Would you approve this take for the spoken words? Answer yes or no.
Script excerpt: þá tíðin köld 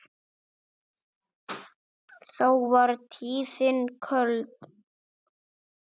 no